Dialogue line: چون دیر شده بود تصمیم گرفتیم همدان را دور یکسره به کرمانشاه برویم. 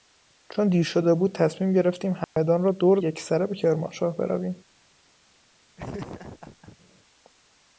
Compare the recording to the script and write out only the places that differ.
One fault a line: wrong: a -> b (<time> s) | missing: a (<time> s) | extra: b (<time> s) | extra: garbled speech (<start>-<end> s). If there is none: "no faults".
no faults